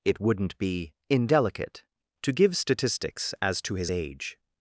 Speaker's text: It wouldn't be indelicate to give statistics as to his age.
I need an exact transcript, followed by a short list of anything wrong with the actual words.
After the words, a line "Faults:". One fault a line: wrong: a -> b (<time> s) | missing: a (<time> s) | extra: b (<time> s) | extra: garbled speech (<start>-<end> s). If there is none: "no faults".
It wouldn't be indelicate to give statistics as to his age.
Faults:
no faults